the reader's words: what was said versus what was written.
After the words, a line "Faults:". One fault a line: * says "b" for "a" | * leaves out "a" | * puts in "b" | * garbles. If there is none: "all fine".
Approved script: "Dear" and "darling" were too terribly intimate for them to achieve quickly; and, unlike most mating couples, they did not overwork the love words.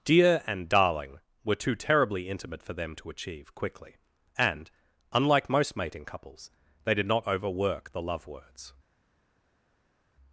"Dear" and "darling" were too terribly intimate for them to achieve quickly; and, unlike most mating couples, they did not overwork the love words.
Faults:
all fine